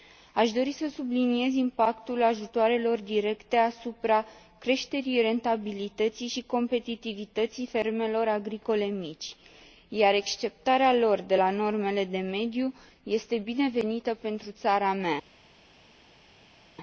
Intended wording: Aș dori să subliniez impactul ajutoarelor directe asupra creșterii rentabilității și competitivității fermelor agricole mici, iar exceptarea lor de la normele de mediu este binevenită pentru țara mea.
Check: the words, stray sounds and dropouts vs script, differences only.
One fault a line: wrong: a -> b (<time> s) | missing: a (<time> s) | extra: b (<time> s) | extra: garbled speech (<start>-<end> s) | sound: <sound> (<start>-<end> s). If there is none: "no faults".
no faults